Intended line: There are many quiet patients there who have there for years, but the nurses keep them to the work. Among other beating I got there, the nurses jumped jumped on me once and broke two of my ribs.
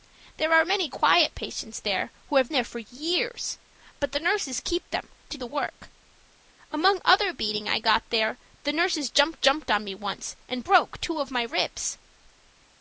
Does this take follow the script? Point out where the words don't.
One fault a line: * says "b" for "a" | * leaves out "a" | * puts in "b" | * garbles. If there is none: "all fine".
all fine